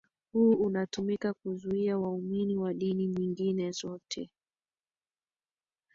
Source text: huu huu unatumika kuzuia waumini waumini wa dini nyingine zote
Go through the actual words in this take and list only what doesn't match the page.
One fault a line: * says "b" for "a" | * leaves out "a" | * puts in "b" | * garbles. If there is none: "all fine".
* leaves out "huu"
* leaves out "waumini"